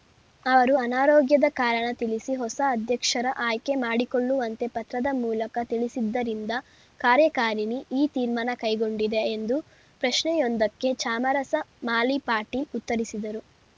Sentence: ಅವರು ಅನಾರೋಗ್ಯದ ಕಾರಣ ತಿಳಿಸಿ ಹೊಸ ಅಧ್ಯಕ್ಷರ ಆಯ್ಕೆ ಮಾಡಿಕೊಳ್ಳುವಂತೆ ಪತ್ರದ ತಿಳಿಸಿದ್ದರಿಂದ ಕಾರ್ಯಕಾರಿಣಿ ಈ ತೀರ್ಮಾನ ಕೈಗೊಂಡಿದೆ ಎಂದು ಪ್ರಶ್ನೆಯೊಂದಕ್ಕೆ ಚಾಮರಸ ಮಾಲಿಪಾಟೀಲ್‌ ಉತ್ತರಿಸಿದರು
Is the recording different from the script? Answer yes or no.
yes